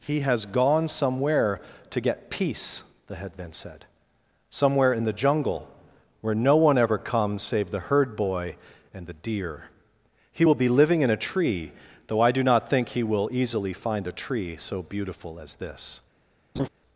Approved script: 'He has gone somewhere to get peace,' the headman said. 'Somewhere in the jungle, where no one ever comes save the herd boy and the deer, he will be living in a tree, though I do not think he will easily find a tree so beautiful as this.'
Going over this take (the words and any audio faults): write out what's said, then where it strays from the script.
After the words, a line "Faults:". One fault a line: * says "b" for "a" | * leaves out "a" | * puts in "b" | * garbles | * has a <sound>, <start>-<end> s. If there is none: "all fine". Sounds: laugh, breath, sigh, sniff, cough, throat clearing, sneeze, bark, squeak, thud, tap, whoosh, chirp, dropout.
'He has gone somewhere to get peace,' the headman said. 'Somewhere in the jungle, where no one ever comes save the herd boy and the deer, he will be living in a tree, though I do not think he will easily find a tree so beautiful as this.'
Faults:
* has a laugh, 16.6-16.7 s